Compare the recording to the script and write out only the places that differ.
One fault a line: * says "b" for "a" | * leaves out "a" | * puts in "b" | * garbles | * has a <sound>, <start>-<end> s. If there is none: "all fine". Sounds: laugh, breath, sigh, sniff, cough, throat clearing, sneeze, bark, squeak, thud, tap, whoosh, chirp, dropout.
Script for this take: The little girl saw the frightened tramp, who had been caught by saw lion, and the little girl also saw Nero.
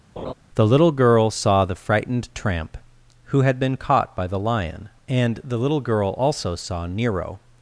* has a laugh, 0.2-0.3 s
* says "the" for "saw"